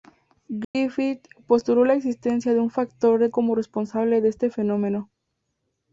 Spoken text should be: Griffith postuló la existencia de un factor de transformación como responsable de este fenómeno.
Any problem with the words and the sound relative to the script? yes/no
yes